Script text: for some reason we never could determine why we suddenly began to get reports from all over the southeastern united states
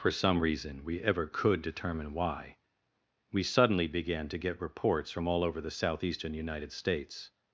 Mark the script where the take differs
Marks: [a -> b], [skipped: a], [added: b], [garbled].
for some reason we [never -> ever] could determine why we suddenly began to get reports from all over the southeastern united states